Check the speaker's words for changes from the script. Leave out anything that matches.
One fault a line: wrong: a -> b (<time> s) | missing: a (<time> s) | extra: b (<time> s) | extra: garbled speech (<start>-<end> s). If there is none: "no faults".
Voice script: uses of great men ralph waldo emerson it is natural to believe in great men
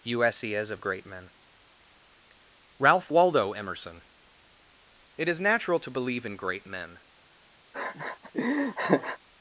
no faults